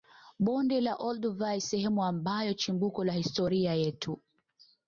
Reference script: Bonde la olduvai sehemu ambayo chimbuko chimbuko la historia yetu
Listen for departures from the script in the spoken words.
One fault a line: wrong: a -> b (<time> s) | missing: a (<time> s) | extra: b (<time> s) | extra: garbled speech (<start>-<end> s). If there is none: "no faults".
missing: chimbuko (3.0 s)